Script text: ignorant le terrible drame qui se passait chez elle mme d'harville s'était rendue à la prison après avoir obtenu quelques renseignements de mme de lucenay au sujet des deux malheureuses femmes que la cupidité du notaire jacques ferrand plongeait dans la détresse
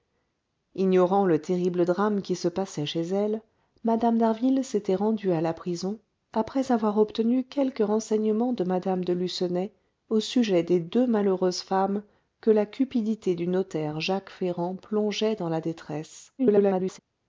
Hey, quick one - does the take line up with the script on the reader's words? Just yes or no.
no